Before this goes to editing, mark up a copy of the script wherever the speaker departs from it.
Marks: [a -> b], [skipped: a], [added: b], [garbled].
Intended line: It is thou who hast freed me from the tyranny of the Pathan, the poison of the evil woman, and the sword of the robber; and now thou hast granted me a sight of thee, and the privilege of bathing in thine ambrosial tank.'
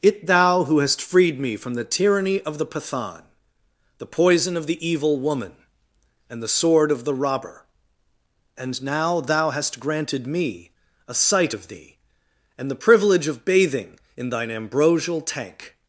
It [skipped: is] thou who hast freed me from the tyranny of the Pathan, the poison of the evil woman, and the sword of the robber; and now thou hast granted me a sight of thee, and the privilege of bathing in thine ambrosial tank.'